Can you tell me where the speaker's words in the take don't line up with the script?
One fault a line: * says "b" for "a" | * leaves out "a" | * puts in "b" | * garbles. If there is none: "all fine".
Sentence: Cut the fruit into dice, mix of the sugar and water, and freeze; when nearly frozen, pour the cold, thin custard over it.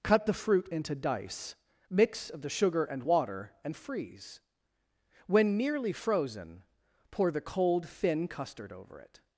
all fine